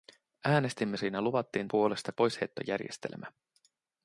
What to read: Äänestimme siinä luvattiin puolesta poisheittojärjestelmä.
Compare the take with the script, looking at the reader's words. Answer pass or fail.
pass